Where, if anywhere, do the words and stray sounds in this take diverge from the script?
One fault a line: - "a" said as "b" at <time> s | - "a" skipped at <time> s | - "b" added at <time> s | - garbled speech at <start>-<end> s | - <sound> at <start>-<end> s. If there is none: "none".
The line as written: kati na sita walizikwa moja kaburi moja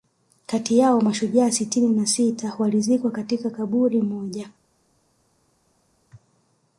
- "yao mashujaa sitini" added at 0.8 s
- "moja" said as "katika" at 3.1 s